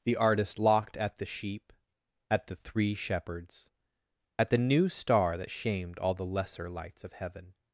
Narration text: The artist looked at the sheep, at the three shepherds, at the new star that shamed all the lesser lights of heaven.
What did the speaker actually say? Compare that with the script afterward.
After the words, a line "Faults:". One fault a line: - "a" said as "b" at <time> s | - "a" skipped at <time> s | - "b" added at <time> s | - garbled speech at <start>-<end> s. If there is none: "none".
The artist locked at the sheep, at the three shepherds, at the new star that shamed all the lesser lights of heaven.
Faults:
- "looked" said as "locked" at 0.6 s